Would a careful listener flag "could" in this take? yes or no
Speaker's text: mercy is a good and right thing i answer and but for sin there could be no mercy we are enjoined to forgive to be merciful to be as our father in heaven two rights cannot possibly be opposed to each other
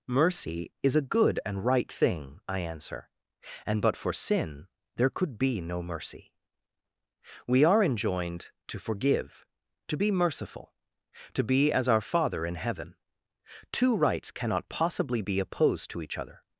no